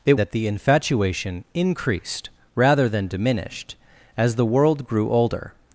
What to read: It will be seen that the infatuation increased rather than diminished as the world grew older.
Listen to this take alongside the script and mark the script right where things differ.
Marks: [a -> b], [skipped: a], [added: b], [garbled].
It [skipped: will be seen] that the infatuation increased rather than diminished as the world grew older.